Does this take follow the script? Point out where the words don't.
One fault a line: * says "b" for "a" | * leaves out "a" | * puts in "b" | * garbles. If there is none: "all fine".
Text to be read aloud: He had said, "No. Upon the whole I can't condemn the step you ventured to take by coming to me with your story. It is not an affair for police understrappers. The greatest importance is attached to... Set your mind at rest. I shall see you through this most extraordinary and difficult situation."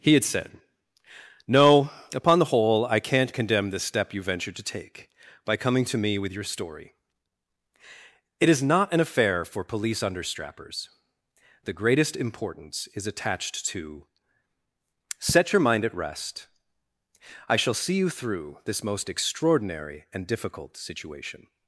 all fine